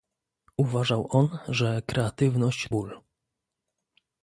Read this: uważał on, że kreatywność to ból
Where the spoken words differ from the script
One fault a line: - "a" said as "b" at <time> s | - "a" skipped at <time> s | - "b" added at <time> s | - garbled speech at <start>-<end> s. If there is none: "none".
- "to" skipped at 2.7 s